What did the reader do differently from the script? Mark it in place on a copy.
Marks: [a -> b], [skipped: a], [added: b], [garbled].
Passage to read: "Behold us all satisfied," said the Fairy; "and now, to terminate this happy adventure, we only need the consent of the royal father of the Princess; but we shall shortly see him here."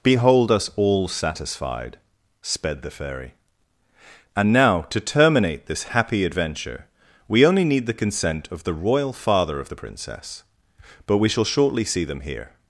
"Behold us all satisfied," [said -> sped] the Fairy; "and now, to terminate this happy adventure, we only need the consent of the royal father of the Princess; but we shall shortly see [him -> them] here."